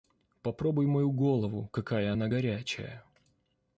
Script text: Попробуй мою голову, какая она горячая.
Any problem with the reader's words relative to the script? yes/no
no